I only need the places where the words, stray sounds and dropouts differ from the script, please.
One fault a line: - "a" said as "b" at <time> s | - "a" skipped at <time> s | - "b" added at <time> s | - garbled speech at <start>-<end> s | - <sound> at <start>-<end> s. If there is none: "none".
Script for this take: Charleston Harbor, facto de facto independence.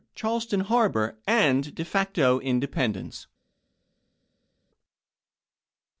- "facto" said as "and" at 1.3 s